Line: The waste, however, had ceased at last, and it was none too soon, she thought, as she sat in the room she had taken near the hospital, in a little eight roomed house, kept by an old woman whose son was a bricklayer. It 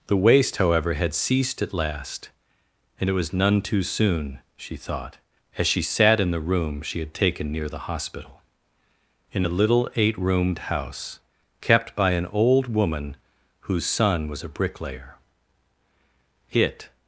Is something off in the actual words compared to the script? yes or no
no